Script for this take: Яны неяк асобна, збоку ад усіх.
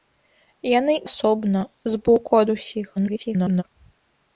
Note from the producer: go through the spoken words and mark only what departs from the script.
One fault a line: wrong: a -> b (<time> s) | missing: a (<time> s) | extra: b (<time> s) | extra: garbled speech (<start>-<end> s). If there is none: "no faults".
missing: неяк (0.9 s)
extra: garbled speech (3.0-3.6 s)